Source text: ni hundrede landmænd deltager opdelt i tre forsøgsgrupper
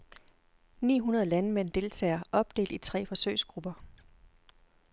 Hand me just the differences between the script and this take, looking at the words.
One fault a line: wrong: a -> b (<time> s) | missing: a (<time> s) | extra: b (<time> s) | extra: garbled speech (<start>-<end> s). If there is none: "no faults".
no faults